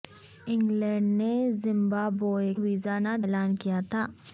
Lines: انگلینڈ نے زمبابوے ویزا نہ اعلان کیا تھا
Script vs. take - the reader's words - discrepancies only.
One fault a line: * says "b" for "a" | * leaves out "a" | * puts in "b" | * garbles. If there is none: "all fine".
all fine